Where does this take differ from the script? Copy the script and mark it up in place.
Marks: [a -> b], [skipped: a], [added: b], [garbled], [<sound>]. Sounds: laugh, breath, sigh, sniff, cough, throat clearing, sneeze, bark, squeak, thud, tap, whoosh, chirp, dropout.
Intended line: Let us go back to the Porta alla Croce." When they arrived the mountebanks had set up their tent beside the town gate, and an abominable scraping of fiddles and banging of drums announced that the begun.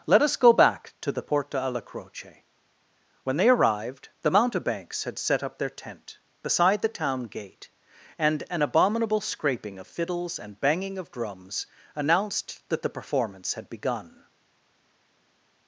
Let us go back to the Porta alla Croce." When they arrived the mountebanks had set up their tent beside the town gate, and an abominable scraping of fiddles and banging of drums announced that the [added: performance had] begun.